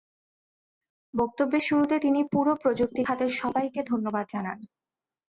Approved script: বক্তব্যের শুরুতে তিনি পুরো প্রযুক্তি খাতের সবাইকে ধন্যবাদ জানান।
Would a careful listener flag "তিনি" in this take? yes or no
no